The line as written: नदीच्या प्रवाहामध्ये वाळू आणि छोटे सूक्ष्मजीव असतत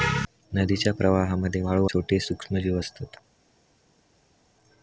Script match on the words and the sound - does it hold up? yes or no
no